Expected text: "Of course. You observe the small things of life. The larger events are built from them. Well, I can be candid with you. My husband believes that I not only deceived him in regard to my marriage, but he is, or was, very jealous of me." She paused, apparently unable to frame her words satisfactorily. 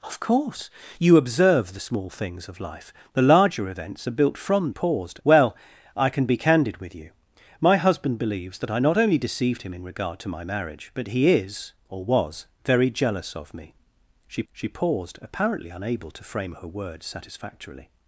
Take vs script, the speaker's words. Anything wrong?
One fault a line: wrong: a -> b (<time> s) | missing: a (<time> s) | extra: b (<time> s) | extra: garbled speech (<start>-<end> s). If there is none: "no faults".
wrong: them -> paused (4.7 s)
extra: she (14.5 s)